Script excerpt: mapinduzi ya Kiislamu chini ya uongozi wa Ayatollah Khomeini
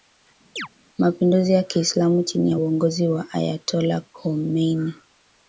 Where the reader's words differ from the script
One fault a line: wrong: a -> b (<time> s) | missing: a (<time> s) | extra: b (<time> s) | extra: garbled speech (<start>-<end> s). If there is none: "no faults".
no faults